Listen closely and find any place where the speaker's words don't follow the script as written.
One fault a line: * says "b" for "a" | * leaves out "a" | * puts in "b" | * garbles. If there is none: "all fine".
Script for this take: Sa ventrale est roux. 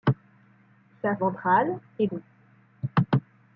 all fine